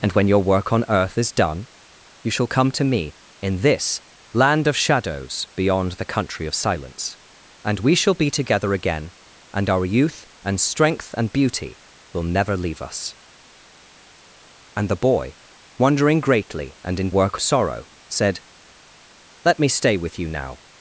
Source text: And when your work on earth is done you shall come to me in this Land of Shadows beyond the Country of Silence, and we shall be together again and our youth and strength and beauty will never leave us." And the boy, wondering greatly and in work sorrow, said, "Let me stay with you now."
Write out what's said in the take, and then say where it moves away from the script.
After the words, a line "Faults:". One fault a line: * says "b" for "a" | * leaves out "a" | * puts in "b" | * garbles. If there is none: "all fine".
And when your work on earth is done you shall come to me in this Land of Shadows beyond the Country of Silence, and we shall be together again and our youth and strength and beauty will never leave us." And the boy, wondering greatly and in work sorrow, said, "Let me stay with you now."
Faults:
all fine